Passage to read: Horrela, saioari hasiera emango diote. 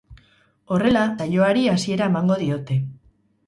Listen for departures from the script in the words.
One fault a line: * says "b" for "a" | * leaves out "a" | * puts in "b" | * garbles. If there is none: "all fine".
all fine